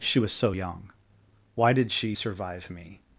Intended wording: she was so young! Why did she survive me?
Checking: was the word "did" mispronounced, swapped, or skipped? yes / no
no